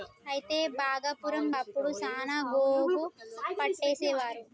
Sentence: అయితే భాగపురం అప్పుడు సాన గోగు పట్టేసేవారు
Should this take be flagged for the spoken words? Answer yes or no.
no